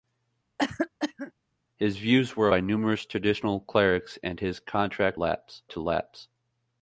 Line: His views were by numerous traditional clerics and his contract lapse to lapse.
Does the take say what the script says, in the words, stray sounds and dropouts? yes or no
no